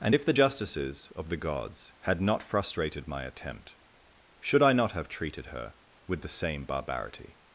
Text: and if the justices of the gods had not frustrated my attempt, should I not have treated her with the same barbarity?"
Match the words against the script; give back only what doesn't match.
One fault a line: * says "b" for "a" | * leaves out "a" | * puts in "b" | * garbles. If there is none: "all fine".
all fine